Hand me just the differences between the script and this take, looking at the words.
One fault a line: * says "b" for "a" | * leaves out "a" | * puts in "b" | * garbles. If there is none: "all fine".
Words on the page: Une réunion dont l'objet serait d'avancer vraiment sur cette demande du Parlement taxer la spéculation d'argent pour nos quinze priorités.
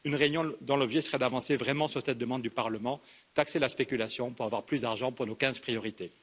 * puts in "pour avoir plus"